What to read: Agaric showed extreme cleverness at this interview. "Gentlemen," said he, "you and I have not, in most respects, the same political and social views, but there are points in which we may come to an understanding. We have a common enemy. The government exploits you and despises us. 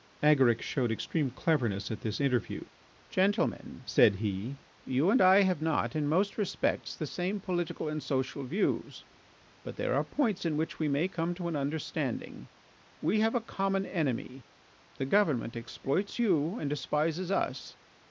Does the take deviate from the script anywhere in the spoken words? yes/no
no